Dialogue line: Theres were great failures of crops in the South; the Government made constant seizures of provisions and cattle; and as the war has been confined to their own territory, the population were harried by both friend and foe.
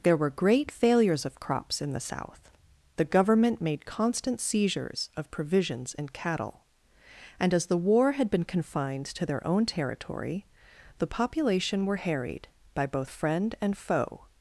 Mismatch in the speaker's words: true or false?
true